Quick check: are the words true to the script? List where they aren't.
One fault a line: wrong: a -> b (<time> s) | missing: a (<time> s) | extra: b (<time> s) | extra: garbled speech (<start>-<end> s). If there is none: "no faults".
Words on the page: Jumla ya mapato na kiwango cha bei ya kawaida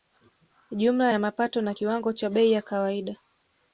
no faults